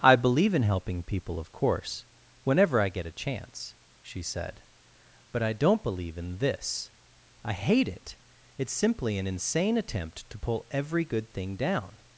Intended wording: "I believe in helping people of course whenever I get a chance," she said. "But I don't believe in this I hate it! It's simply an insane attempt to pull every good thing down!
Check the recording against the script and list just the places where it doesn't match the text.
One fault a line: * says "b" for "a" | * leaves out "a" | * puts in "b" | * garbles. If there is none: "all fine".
all fine